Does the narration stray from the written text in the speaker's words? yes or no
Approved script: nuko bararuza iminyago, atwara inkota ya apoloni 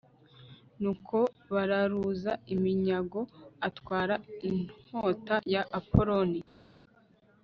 no